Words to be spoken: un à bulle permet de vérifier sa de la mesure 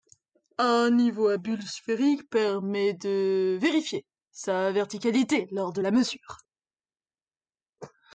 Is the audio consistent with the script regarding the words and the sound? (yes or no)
no